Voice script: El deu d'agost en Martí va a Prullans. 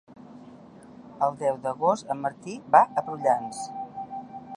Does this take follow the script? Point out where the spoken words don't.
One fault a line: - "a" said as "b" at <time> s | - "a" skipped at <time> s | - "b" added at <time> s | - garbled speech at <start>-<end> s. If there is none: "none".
none